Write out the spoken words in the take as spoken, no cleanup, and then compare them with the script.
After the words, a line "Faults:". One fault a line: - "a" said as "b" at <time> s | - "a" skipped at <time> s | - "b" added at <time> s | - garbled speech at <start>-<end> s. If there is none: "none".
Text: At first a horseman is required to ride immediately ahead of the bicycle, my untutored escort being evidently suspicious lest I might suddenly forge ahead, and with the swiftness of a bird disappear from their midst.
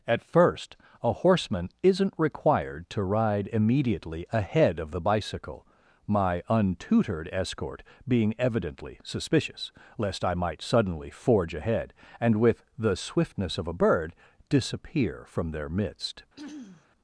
At first a horseman isn't required to ride immediately ahead of the bicycle, my untutored escort being evidently suspicious lest I might suddenly forge ahead, and with the swiftness of a bird disappear from their midst.
Faults:
- "is" said as "isn't" at 1.8 s